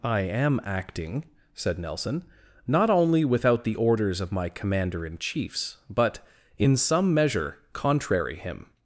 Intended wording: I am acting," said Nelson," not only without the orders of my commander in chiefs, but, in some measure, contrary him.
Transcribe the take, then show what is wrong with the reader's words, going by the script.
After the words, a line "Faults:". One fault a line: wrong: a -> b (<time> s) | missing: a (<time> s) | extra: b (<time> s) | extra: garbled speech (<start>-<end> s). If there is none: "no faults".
I am acting," said Nelson," not only without the orders of my commander in chiefs, but, in some measure, contrary him.
Faults:
no faults